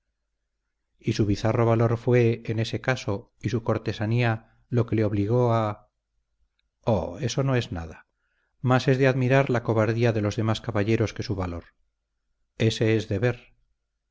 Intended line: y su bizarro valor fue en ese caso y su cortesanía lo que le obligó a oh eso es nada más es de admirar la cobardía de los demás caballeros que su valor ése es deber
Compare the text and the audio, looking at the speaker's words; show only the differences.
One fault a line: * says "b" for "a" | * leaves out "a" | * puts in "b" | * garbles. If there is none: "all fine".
* puts in "no"